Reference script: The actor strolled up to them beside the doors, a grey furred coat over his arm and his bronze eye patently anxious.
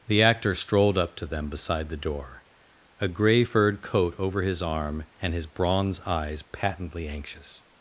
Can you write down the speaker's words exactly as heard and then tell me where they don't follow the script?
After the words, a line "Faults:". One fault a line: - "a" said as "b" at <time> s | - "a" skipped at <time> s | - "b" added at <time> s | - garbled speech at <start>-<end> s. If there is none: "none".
The actor strolled up to them beside the door, a grey furred coat over his arm and his bronze eyes patently anxious.
Faults:
- "doors" said as "door" at 2.0 s
- "eye" said as "eyes" at 6.0 s